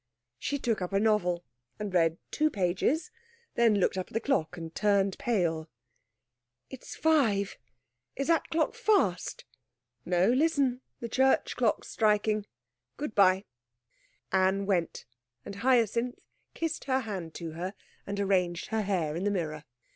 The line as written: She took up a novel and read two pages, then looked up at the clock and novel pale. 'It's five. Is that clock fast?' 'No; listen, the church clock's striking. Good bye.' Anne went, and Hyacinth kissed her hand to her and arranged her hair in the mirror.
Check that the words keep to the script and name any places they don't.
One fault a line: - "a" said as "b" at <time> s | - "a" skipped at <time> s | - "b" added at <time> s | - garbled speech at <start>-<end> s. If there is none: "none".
- "novel" said as "turned" at 4.7 s